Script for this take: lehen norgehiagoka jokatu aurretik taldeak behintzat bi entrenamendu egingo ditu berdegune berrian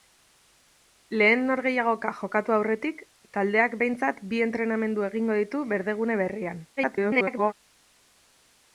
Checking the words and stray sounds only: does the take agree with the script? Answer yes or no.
no